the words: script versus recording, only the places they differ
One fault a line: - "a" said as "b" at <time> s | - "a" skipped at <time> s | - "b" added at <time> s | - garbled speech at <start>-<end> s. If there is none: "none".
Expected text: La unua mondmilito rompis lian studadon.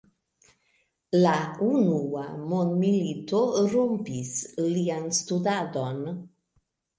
none